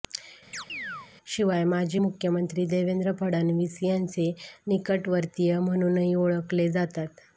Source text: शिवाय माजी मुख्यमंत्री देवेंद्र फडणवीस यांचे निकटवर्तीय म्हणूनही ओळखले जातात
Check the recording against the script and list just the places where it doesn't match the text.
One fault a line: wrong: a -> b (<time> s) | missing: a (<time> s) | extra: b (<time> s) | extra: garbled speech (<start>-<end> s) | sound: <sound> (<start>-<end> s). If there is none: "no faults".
sound: chirp (0.5-1.1 s)